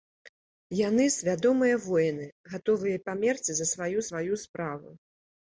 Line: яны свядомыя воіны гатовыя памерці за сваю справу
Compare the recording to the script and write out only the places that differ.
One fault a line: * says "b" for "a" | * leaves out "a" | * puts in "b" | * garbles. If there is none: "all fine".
* puts in "сваю"